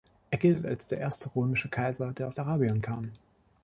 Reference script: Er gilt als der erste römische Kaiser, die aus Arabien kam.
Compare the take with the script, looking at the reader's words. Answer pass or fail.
fail